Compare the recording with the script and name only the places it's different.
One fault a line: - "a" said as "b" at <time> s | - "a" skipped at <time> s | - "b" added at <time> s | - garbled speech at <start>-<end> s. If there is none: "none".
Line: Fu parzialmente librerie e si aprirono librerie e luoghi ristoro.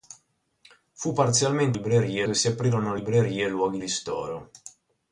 none